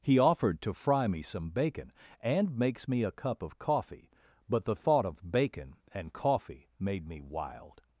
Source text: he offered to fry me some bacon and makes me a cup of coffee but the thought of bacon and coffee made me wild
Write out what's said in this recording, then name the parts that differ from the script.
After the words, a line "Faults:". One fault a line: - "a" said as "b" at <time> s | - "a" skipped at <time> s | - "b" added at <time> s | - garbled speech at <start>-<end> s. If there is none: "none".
he offered to fry me some bacon and makes me a cup of coffee but the thought of bacon and coffee made me wild
Faults:
none